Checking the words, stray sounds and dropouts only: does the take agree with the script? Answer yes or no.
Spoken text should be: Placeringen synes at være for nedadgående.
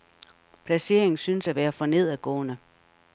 yes